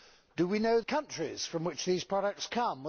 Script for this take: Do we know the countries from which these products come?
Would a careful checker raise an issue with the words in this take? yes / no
yes